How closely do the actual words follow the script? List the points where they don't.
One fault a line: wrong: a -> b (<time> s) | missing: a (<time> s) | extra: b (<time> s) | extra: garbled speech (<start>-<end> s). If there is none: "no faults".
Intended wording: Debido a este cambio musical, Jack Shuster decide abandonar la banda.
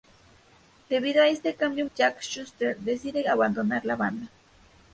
missing: musical (1.9 s)